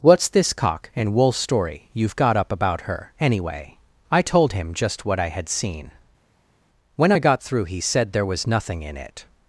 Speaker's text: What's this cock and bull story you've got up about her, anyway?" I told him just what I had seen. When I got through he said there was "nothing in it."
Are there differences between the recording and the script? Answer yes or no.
yes